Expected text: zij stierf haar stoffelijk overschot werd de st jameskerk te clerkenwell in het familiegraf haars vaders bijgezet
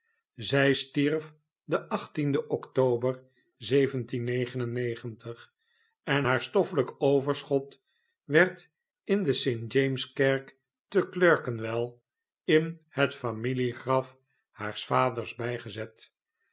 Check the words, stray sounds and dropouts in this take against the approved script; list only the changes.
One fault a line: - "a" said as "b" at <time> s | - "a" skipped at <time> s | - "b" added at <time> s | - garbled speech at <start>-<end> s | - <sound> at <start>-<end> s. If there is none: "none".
- "den october en" added at 1.6 s
- "in" added at 9.0 s